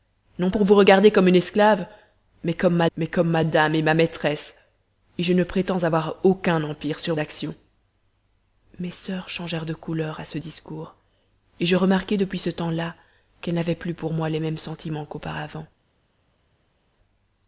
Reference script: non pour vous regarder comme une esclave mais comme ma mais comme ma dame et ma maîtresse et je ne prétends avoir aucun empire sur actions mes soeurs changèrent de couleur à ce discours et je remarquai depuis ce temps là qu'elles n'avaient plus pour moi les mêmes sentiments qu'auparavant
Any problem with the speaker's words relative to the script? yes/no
no